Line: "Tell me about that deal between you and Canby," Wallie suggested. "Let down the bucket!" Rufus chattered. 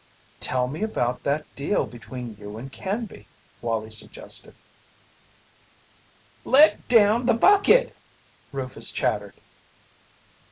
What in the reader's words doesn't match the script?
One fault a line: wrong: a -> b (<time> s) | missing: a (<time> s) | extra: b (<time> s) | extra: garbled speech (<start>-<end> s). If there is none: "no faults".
no faults